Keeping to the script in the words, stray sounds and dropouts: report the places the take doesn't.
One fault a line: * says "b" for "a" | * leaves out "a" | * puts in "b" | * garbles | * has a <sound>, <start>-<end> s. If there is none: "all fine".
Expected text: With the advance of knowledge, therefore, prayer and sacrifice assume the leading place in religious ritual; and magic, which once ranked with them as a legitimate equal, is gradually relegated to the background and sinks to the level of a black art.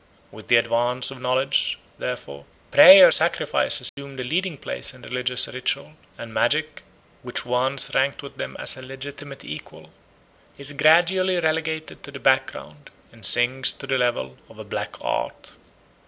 * leaves out "and"
* has a dropout, 3.9-4.0 s